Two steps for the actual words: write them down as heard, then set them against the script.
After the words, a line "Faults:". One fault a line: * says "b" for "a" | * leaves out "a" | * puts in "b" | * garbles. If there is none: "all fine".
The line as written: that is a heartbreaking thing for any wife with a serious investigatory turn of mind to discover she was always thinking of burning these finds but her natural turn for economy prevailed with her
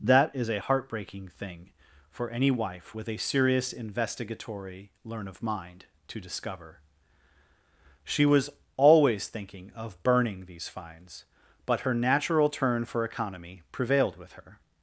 that is a heartbreaking thing for any wife with a serious investigatory learn of mind to discover she was always thinking of burning these finds but her natural turn for economy prevailed with her
Faults:
* says "learn" for "turn"